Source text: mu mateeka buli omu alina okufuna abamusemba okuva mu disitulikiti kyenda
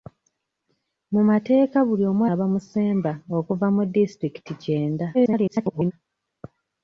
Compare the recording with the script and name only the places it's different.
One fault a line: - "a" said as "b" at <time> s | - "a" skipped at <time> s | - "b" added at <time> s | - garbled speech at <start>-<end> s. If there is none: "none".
- "alina okufuna" skipped at 2.2 s
- garbled speech at 5.1-5.9 s